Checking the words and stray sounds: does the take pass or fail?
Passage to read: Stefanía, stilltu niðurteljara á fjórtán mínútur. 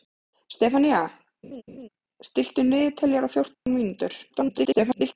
fail